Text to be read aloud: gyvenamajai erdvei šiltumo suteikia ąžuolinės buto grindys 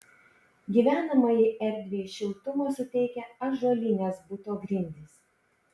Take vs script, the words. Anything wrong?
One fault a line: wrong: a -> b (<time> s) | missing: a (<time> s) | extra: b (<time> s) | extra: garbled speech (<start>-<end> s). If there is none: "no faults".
no faults